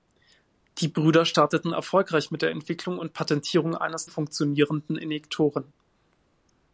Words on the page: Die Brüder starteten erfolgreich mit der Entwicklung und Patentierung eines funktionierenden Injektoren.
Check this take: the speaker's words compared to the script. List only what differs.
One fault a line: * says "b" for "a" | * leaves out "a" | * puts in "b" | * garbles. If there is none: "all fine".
all fine